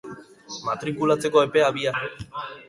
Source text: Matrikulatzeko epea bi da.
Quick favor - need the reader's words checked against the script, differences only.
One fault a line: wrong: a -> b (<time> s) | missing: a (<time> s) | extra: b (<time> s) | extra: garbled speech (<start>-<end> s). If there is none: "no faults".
no faults